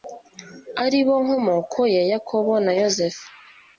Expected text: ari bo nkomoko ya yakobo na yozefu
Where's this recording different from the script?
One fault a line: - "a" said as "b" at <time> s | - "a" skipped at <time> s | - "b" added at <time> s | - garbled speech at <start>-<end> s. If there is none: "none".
none